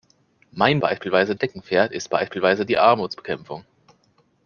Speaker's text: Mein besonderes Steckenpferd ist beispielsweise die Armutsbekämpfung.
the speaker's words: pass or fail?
fail